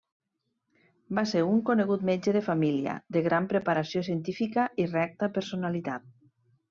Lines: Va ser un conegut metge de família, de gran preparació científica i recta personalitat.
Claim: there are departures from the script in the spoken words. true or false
false